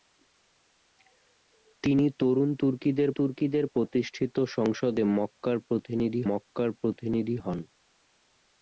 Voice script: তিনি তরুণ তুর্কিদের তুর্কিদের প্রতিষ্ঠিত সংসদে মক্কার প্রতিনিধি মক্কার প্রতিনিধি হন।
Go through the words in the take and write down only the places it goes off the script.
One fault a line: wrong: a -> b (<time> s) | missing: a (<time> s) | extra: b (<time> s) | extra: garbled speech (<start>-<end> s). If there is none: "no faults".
no faults